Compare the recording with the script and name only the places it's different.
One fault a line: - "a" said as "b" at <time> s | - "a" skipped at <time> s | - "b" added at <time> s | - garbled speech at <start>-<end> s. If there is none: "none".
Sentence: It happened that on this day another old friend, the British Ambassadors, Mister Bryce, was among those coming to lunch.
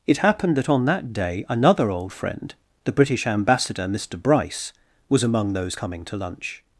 - "this" said as "that" at 0.8 s
- "Ambassadors" said as "Ambassador" at 3.3 s